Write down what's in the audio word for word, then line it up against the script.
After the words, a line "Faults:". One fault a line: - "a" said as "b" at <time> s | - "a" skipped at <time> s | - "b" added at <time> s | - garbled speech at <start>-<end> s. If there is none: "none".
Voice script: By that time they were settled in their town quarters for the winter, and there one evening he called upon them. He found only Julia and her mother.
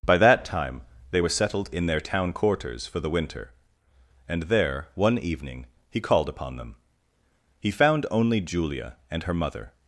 By that time they were settled in their town quarters for the winter, and there one evening he called upon them. He found only Julia and her mother.
Faults:
none